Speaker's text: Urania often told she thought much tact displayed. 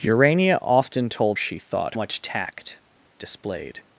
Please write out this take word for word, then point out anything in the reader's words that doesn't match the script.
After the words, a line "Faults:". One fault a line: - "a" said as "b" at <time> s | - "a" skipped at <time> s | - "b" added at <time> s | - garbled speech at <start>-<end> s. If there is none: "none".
Urania often told she thought much tact displayed.
Faults:
none